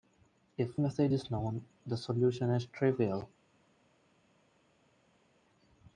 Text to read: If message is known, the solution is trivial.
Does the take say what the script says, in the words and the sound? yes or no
yes